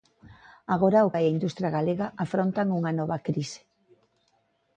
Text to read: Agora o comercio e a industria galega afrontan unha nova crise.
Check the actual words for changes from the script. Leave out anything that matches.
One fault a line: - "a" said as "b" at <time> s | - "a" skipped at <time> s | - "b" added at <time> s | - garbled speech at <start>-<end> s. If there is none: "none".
- "comercio" skipped at 1.1 s